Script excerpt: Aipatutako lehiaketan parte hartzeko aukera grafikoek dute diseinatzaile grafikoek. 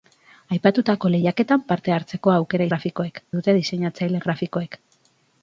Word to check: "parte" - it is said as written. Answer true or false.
true